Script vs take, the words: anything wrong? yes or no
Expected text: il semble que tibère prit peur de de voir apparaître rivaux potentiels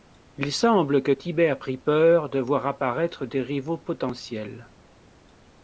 yes